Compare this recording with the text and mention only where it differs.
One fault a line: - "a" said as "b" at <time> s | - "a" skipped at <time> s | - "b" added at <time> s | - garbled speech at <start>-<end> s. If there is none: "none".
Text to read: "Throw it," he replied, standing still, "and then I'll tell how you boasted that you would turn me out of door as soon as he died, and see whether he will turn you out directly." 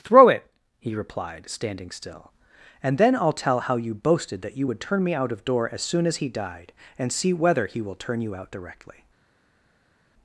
none